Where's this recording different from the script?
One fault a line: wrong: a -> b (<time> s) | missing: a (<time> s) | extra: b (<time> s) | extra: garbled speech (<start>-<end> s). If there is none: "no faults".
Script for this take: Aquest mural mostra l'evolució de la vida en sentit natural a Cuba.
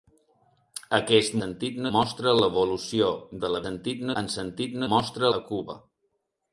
wrong: mural -> sentit (1.4 s)
wrong: vida -> sentit (3.7 s)
wrong: natural -> mostra (4.9 s)